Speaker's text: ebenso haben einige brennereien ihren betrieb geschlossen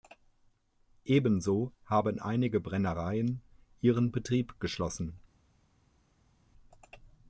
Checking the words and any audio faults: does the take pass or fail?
pass